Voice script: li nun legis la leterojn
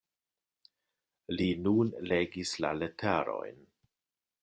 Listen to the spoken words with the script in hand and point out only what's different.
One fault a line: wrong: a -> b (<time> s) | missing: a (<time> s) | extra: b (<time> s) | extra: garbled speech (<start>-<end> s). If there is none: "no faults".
no faults